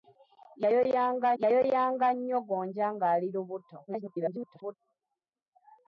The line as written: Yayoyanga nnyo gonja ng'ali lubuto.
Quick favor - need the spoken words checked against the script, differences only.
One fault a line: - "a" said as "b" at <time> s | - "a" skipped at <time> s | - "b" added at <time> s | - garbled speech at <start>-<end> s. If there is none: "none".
- "yayoyanga" added at 1.4 s
- garbled speech at 3.9-4.8 s